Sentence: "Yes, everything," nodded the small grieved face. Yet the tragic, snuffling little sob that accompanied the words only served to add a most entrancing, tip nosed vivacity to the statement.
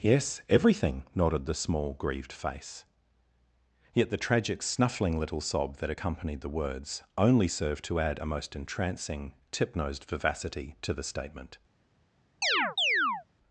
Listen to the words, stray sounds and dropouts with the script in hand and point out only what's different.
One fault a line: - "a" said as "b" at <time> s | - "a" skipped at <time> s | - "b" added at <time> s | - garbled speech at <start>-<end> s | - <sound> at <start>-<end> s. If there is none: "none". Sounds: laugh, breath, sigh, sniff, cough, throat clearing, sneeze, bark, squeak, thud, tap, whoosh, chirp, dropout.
- chirp at 12.4-13.2 s